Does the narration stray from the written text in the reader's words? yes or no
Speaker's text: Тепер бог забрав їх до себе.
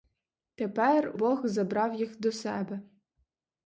no